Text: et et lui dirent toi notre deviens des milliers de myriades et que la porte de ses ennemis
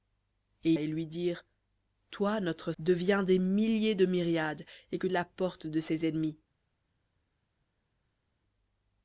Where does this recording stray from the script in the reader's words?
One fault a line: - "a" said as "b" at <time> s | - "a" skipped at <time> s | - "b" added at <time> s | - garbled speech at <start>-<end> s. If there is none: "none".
none